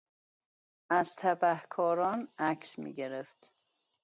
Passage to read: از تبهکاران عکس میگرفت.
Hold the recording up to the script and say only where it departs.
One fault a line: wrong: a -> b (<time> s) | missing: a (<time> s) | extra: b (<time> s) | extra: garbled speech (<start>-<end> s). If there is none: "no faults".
no faults